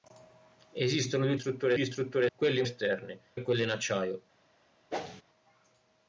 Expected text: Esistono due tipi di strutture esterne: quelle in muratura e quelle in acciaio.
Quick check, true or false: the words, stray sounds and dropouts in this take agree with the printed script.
false